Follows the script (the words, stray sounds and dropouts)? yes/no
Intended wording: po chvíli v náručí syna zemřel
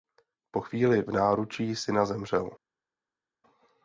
yes